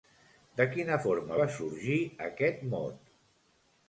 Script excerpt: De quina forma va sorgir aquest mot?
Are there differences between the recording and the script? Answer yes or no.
no